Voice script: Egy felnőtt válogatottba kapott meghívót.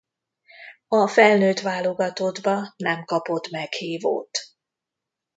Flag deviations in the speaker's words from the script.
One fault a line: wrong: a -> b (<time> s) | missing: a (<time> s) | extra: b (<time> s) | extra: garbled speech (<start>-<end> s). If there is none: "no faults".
wrong: Egy -> A (0.9 s)
extra: nem (2.8 s)